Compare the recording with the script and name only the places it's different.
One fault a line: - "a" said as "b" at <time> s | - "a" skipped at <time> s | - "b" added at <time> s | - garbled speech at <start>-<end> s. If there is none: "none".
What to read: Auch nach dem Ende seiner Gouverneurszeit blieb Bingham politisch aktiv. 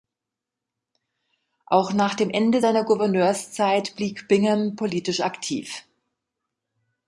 none